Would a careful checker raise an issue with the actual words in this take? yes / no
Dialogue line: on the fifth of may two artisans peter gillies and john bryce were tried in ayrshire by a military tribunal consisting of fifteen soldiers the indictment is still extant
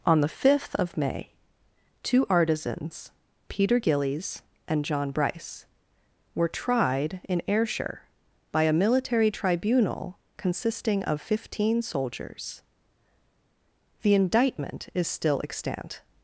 no